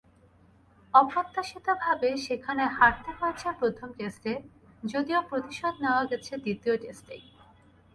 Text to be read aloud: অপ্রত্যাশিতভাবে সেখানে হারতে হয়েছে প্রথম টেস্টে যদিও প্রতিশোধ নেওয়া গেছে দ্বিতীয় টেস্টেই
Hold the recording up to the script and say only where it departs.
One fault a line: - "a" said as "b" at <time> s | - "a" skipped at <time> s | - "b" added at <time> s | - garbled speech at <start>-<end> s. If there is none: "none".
none